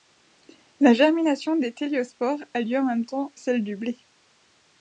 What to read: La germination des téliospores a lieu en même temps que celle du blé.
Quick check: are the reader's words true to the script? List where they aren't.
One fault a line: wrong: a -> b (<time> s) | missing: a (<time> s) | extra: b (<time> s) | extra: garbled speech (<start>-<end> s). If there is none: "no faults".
missing: que (3.3 s)